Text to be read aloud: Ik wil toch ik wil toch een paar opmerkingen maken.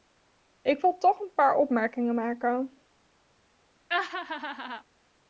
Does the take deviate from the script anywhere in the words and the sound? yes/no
yes